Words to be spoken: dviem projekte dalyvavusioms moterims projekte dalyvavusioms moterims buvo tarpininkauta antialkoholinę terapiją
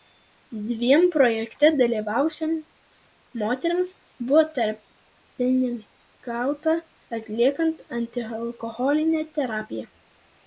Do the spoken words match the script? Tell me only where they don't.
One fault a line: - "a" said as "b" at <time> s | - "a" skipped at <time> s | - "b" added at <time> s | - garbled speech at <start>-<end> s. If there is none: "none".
- "projekte dalyvavusioms moterims" skipped at 3.9 s
- "atliekant" added at 7.2 s